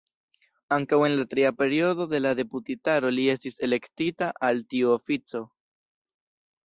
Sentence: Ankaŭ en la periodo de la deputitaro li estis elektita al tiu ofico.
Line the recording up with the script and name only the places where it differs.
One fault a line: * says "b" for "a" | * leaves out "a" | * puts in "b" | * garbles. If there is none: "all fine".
* puts in "tria"